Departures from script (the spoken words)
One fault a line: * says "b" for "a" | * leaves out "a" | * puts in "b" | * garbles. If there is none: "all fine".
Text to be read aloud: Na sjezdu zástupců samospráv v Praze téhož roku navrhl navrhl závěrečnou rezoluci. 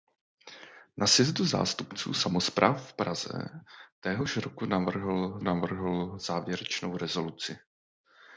all fine